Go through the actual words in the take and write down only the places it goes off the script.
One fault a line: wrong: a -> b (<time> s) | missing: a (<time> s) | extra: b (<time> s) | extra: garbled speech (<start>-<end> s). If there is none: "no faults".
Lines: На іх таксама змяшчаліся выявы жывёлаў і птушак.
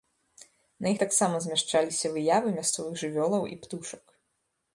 extra: мясцовых (2.6 s)